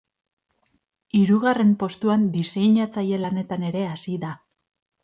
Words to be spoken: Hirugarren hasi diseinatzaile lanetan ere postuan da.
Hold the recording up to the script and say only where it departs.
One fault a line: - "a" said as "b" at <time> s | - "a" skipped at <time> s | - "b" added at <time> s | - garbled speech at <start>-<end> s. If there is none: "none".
- "hasi" said as "postuan" at 1.8 s
- "postuan" said as "hasi" at 3.9 s